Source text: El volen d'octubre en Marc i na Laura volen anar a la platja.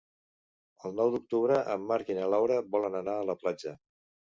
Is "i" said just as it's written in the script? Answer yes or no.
yes